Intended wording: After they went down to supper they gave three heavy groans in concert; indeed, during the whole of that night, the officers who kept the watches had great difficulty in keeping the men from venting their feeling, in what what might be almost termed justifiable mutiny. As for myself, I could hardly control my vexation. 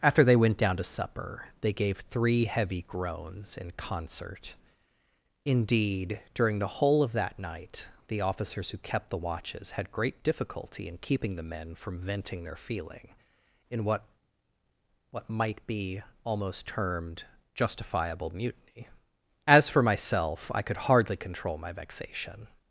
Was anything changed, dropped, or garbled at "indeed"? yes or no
no